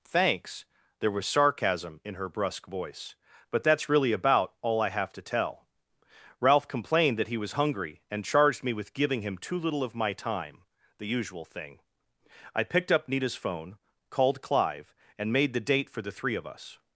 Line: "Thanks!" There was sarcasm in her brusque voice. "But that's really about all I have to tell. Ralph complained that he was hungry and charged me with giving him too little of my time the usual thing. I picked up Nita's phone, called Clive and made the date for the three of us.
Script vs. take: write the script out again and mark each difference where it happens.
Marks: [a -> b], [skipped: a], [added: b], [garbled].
"Thanks!" There was sarcasm in her brusque voice. "But that's really about all I have to tell. Ralph complained that he was hungry and charged me with giving him too little of my time the usual thing. I picked up Nita's phone, called Clive and made the date for the three of us.